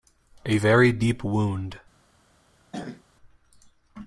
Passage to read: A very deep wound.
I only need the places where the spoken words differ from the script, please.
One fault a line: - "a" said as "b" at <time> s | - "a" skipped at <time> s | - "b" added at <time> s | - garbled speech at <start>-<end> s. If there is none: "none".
none